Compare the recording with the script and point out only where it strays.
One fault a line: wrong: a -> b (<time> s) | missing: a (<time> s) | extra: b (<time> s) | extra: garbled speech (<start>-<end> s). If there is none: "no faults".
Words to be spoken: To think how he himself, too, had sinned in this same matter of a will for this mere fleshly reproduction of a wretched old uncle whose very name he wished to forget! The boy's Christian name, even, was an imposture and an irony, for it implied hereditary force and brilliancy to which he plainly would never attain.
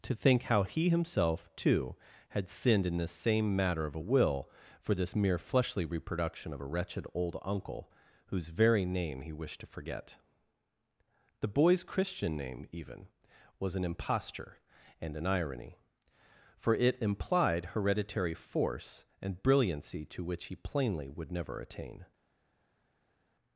no faults